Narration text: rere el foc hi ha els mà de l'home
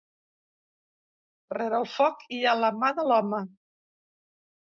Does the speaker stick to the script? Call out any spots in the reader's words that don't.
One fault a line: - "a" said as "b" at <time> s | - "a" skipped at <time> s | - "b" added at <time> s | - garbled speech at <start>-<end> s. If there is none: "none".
- "els" said as "la" at 2.6 s